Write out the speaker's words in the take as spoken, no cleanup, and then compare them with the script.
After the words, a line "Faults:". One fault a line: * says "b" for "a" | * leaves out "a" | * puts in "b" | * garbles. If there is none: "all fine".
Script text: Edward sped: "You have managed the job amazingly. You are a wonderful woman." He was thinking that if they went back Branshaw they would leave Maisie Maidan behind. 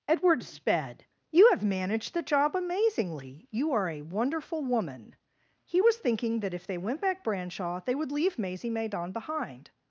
Edward sped: "You have managed the job amazingly. You are a wonderful woman." He was thinking that if they went back Branshaw they would leave Maisie Maidan behind.
Faults:
all fine